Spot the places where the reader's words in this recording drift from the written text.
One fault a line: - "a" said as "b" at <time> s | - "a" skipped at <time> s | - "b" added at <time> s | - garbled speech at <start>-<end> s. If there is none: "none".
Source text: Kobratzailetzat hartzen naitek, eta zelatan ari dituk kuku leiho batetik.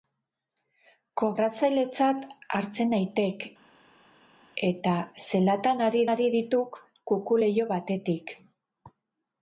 - "ari" added at 6.1 s